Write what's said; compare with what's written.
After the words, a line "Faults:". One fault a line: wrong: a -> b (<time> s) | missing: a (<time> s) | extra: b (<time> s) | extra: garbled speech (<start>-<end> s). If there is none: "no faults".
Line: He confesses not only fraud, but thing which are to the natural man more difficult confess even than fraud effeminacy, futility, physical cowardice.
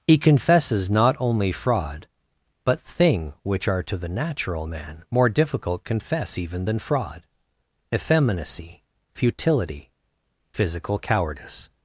He confesses not only fraud, but thing which are to the natural man more difficult confess even than fraud effeminacy, futility, physical cowardice.
Faults:
no faults